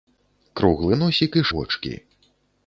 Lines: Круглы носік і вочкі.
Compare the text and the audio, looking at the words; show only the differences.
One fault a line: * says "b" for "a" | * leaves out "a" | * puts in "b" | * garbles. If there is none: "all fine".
all fine